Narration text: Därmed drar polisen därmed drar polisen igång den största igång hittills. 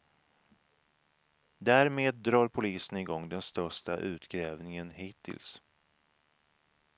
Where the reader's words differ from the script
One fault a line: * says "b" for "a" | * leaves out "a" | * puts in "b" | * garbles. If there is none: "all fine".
* leaves out "därmed drar polisen"
* says "utgrävningen" for "igång"